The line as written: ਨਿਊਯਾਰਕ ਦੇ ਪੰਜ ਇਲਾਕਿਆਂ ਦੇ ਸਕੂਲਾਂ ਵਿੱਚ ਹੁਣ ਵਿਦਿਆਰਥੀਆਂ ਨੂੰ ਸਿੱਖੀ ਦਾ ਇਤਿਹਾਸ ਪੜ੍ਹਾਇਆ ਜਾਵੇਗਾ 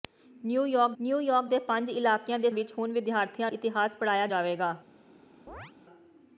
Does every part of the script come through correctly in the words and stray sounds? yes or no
no